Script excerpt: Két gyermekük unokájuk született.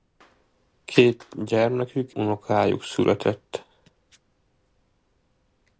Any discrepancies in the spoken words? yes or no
no